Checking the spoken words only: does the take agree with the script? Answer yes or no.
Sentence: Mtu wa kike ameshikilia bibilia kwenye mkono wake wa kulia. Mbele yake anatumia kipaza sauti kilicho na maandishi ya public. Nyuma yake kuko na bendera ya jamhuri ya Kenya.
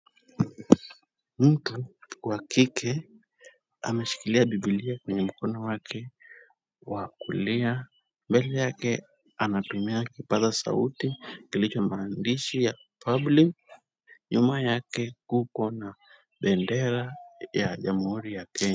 no